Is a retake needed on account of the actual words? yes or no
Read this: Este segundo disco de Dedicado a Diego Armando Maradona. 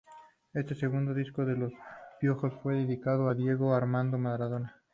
yes